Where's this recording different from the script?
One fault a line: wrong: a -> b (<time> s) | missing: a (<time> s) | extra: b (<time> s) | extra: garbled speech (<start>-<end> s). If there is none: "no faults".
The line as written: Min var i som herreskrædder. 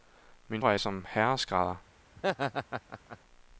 no faults